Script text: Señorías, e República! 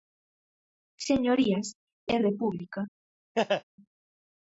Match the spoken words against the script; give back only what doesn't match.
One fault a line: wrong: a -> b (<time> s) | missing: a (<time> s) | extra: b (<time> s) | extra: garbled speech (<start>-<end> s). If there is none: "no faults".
no faults